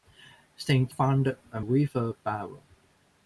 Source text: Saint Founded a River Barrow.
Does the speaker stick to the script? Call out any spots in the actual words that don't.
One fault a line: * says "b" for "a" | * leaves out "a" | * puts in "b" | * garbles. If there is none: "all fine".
all fine